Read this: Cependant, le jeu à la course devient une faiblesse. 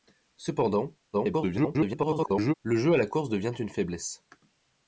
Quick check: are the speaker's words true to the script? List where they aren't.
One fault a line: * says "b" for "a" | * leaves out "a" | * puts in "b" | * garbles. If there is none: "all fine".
* garbles